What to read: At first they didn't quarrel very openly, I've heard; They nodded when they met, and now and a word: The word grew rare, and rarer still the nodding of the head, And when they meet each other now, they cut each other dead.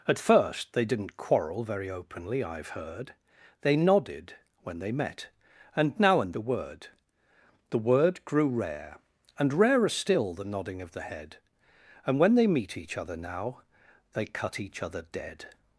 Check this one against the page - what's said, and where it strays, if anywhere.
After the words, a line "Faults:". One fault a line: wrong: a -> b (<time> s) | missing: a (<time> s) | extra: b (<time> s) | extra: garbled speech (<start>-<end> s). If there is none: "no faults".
At first they didn't quarrel very openly, I've heard; They nodded when they met, and now and a word: The word grew rare, and rarer still the nodding of the head, And when they meet each other now, they cut each other dead.
Faults:
no faults